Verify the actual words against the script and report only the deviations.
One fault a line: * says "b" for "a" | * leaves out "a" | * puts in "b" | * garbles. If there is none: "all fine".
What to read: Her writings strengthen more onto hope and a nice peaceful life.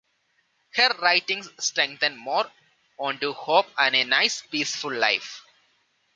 all fine